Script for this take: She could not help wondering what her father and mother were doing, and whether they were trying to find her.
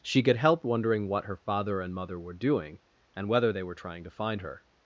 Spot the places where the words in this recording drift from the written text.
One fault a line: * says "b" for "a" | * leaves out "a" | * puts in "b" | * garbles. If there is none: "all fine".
* leaves out "not"